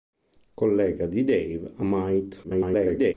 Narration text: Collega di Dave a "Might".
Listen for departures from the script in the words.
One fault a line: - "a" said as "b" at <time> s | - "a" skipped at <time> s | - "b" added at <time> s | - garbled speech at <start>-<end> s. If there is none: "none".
- garbled speech at 2.4-3.1 s